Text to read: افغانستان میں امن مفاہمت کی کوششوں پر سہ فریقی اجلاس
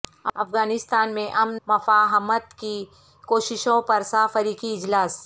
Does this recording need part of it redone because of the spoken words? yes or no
no